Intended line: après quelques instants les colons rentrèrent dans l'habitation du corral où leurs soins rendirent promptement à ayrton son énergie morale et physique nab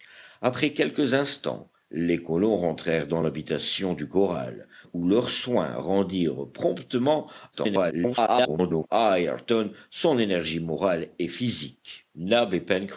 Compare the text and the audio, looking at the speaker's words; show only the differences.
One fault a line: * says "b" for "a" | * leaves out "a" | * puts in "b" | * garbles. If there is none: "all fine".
* garbles